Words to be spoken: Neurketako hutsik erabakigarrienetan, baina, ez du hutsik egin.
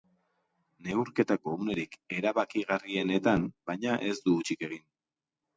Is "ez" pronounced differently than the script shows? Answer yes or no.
no